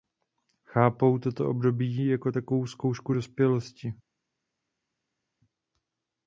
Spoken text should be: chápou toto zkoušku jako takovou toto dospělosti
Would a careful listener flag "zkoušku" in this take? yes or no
yes